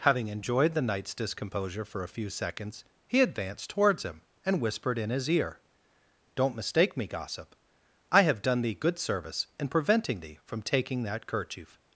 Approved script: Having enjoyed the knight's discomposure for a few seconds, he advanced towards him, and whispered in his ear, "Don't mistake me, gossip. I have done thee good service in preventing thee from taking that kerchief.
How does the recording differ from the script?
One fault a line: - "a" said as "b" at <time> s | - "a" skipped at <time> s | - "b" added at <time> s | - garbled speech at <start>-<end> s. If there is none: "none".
none